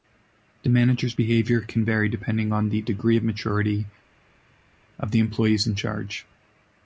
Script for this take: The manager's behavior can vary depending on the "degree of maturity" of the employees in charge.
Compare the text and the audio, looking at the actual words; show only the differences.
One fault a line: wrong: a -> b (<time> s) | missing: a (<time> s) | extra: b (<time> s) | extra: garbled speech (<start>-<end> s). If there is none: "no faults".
no faults